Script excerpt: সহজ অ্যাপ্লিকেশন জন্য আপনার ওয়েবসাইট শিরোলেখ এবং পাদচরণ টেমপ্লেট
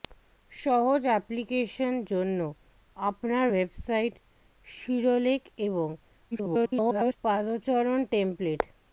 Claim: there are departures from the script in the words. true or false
true